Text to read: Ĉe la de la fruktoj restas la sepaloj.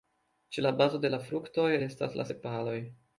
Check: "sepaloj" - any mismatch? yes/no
no